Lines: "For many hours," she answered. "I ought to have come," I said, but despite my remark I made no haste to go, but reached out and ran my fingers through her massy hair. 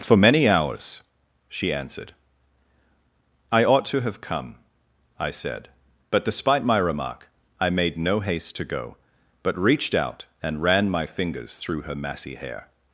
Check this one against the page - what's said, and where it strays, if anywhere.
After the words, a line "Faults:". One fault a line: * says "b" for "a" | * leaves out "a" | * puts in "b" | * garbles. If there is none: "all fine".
"For many hours," she answered. "I ought to have come," I said, but despite my remark I made no haste to go, but reached out and ran my fingers through her massy hair.
Faults:
all fine